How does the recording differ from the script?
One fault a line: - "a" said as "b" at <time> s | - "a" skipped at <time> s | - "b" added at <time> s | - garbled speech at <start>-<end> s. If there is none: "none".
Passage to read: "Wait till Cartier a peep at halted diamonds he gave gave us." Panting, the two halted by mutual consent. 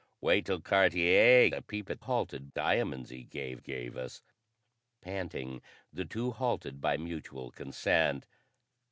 none